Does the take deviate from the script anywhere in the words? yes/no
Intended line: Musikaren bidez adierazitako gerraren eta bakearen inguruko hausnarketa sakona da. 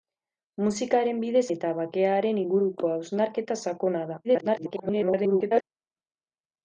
yes